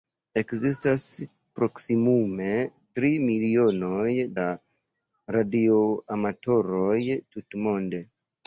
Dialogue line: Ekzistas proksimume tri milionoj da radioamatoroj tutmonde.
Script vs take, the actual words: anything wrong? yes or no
no